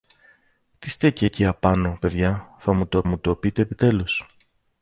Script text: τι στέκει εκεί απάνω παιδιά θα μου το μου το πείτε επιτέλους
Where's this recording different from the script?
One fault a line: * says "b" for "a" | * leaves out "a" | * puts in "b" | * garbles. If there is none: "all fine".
all fine